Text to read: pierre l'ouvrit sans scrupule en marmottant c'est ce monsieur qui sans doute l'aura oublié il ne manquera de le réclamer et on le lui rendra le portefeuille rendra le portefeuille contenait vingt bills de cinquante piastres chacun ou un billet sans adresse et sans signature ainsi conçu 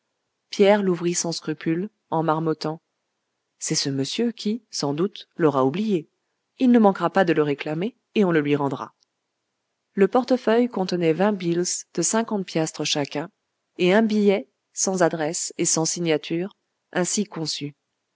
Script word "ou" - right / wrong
wrong